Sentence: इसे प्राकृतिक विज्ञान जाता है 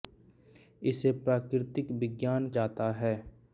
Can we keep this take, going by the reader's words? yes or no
yes